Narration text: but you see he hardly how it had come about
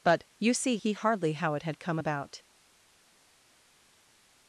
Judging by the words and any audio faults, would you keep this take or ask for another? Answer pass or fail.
pass